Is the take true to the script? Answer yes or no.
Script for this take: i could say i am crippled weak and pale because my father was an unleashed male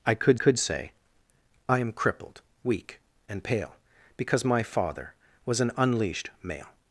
no